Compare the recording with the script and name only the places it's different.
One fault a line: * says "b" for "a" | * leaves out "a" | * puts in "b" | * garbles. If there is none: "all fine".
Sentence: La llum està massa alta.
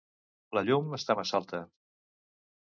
all fine